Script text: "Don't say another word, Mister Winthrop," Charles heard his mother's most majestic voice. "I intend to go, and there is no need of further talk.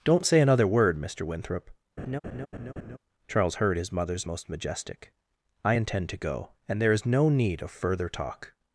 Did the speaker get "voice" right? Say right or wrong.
wrong